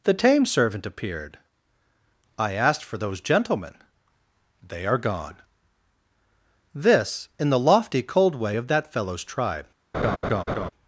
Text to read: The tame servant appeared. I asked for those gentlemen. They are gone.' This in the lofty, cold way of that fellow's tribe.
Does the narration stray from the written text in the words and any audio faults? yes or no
yes